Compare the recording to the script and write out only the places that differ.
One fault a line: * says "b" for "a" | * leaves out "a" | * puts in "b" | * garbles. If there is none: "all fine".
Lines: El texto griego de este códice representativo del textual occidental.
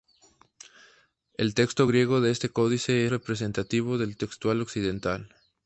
all fine